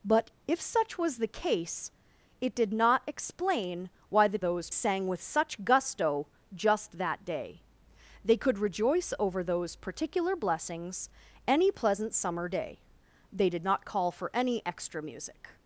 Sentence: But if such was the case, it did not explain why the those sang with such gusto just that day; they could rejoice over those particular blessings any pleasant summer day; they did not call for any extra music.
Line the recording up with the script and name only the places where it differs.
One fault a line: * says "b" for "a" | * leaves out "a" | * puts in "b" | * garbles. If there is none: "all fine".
all fine